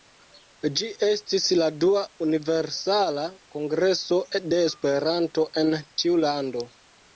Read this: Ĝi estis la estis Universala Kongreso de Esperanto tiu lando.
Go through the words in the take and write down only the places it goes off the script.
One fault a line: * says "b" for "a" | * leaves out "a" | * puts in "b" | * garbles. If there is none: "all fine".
* says "dua" for "estis"
* puts in "en"